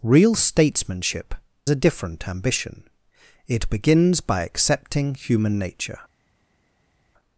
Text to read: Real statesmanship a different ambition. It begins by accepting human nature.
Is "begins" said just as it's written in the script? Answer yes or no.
yes